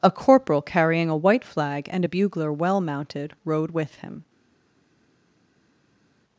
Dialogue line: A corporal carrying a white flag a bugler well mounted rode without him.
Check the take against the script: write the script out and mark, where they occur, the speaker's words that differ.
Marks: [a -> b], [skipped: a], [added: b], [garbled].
A corporal carrying a white flag [added: and] a bugler well mounted rode [without -> with] him.